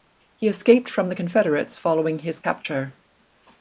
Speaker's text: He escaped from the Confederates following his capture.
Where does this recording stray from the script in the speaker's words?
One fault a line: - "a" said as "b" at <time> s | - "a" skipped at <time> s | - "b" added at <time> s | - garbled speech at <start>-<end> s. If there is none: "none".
none